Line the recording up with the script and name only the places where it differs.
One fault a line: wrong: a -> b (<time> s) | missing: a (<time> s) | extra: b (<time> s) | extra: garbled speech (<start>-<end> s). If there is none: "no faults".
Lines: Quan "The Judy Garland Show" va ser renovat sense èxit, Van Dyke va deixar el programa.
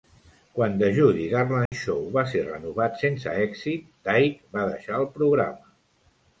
missing: Van (3.9 s)